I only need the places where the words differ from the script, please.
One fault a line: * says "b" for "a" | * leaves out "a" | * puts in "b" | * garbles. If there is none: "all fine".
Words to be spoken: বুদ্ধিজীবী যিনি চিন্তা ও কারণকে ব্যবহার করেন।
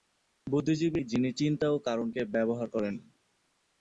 all fine